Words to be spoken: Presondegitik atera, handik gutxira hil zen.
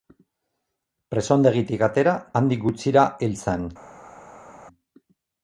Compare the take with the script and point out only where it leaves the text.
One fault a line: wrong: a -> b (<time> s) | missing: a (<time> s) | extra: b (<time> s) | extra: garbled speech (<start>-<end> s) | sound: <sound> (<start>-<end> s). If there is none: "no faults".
no faults